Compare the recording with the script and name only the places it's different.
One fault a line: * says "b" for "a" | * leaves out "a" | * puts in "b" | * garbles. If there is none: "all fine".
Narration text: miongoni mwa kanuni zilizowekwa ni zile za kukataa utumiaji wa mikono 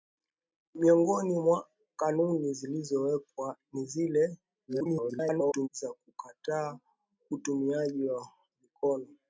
* garbles